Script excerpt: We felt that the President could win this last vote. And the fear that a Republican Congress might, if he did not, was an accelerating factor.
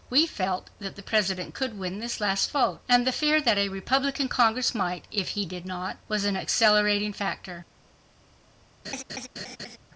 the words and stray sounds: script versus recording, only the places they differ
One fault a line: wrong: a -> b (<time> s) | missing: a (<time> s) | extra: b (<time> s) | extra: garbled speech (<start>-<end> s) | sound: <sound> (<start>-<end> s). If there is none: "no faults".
sound: laugh (8.8-9.8 s)